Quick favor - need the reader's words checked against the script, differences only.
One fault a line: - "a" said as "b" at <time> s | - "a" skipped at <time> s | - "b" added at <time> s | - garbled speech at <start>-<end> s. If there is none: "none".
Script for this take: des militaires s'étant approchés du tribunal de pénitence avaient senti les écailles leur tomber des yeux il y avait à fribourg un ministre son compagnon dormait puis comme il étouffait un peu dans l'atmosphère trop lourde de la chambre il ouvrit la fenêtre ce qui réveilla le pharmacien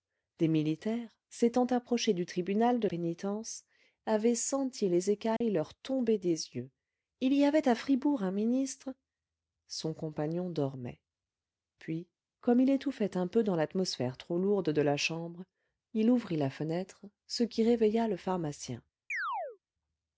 none